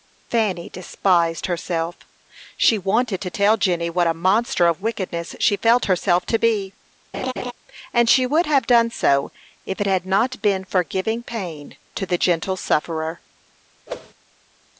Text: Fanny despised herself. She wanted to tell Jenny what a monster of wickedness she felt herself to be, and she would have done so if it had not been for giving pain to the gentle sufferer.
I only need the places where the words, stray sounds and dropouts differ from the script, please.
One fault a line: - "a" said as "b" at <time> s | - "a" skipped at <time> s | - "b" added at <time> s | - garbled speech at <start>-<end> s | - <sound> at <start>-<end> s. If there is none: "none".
- laugh at 7.1-7.5 s
- whoosh at 13.9-14.1 s